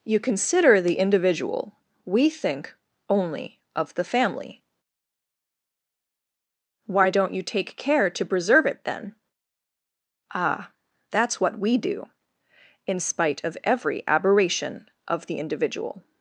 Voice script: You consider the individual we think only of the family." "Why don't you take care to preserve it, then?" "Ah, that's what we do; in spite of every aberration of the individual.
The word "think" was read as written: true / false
true